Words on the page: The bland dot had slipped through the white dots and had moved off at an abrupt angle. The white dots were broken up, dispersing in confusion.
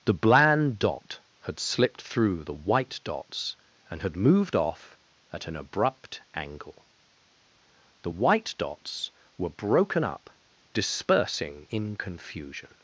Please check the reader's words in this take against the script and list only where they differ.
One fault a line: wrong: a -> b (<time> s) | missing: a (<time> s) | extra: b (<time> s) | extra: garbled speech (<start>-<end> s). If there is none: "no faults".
no faults